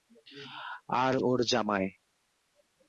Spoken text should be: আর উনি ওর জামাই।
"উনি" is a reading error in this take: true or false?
true